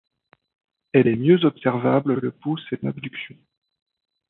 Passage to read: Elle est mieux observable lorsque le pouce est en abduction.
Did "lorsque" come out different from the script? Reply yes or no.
yes